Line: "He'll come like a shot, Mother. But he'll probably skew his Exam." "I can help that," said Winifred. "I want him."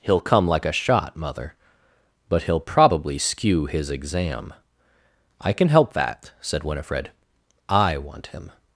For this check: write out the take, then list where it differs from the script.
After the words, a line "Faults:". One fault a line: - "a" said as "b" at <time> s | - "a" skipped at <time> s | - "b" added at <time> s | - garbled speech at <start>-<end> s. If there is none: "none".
"He'll come like a shot, Mother. But he'll probably skew his Exam." "I can help that," said Winifred. "I want him."
Faults:
none